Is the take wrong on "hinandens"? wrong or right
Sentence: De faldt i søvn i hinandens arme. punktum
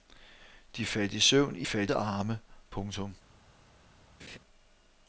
wrong